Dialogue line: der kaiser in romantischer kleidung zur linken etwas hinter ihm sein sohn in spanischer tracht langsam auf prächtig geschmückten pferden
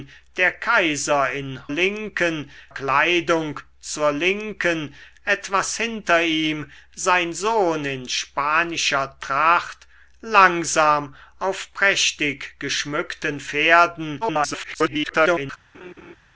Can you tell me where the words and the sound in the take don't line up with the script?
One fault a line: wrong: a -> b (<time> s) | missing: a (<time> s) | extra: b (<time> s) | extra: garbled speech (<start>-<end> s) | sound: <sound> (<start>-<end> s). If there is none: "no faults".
wrong: romantischer -> linken (1.7 s)
extra: garbled speech (14.2-15.6 s)
sound: laugh (15.7-16.2 s)